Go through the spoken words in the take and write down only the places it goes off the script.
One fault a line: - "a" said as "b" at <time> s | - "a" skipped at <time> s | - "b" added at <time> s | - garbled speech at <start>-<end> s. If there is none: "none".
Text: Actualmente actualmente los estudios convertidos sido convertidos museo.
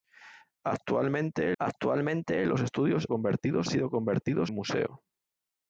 none